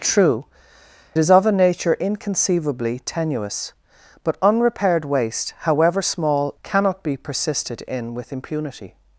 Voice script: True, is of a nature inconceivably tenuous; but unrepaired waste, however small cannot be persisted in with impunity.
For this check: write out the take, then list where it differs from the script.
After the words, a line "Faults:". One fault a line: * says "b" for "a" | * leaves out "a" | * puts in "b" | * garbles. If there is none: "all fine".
True, is of a nature inconceivably tenuous; but unrepaired waste, however small cannot be persisted in with impunity.
Faults:
all fine